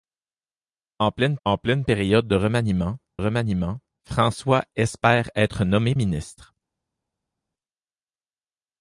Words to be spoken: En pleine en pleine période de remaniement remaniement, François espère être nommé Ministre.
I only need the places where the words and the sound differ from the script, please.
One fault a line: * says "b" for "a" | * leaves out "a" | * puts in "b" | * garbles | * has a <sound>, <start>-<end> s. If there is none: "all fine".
all fine